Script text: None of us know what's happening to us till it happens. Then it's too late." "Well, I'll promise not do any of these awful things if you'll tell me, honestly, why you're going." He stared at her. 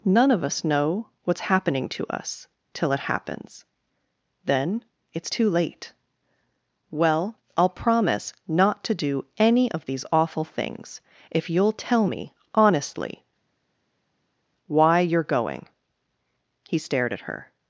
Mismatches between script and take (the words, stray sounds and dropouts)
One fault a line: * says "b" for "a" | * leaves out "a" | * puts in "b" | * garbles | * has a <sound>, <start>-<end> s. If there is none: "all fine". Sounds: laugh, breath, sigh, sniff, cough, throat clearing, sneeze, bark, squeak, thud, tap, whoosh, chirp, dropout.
* puts in "to"